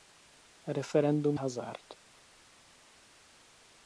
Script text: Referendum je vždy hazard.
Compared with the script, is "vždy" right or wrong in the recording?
wrong